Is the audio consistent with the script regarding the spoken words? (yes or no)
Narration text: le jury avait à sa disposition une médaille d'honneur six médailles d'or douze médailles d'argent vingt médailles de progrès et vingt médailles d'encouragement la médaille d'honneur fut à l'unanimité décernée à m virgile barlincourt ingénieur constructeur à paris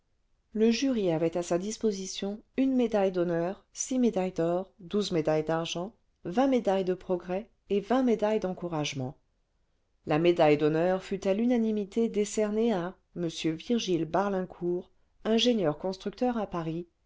yes